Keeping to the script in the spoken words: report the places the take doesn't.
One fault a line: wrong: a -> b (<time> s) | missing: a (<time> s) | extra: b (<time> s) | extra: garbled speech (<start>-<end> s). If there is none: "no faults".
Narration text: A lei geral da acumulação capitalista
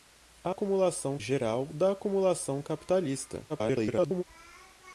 wrong: lei -> acumulação (0.5 s)
extra: garbled speech (3.5-4.2 s)